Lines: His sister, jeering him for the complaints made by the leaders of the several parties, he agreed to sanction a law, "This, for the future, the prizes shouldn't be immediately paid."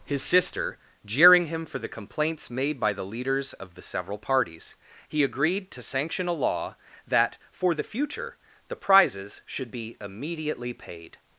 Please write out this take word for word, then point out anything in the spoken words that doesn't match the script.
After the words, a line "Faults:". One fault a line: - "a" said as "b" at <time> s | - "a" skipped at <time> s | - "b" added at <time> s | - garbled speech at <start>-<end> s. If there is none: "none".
His sister, jeering him for the complaints made by the leaders of the several parties, he agreed to sanction a law, "That, for the future, the prizes should be immediately paid."
Faults:
- "This" said as "That" at 7.1 s
- "shouldn't" said as "should" at 9.5 s